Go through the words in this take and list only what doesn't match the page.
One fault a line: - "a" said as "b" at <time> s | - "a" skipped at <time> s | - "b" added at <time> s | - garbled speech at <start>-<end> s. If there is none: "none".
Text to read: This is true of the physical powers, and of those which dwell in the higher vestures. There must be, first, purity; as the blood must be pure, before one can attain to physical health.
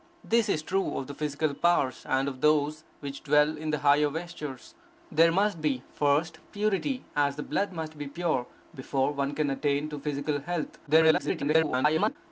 - garbled speech at 10.9-12.2 s